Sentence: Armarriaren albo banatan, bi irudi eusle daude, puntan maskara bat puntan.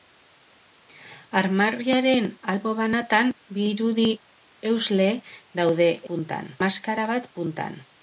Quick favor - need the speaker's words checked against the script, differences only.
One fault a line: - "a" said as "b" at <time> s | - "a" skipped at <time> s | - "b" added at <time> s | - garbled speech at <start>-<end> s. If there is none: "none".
none